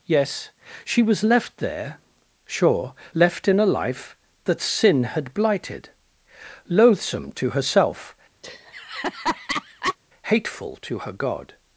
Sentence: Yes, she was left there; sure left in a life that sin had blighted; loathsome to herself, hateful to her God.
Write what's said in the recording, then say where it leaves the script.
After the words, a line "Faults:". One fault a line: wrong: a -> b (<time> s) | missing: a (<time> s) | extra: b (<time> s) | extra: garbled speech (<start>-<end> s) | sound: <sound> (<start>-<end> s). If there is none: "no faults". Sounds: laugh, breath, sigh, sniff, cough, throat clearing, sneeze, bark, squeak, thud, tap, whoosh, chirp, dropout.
Yes, she was left there; sure left in a life that sin had blighted; loathsome to herself, hateful to her God.
Faults:
sound: laugh (8.4-10.0 s)